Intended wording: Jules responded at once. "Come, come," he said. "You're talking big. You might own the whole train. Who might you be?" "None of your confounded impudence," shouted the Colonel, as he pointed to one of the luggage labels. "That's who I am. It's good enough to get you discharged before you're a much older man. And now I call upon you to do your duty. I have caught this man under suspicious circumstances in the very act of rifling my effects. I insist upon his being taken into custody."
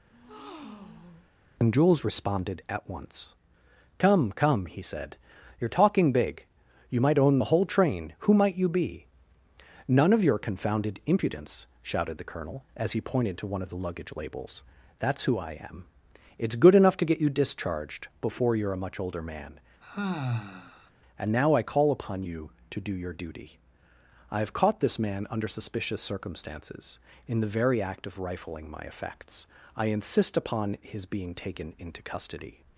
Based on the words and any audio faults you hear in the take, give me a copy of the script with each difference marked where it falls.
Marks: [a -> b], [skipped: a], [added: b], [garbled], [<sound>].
[breath] [added: and] Jules responded at once. "Come, come," he said. "You're talking big. You might own the whole train. Who might you be?" "None of your confounded impudence," shouted the Colonel, as he pointed to one of the luggage labels. "That's who I am. It's good enough to get you discharged before you're a much older man. [sigh] And now I call upon you to do your duty. I have caught this man under suspicious circumstances in the very act of rifling my effects. I insist upon his being taken into custody."